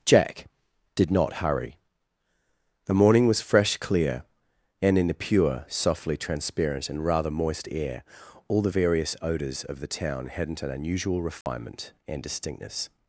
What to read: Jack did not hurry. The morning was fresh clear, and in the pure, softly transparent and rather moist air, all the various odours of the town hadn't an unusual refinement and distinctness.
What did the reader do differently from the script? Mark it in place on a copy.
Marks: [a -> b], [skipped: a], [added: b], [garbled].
Jack did not hurry. The morning was fresh clear, and in the pure, softly transparent and rather moist air, all the various odours of the town hadn't an unusual refinement and distinctness.